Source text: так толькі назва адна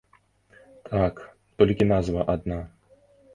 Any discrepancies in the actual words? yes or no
no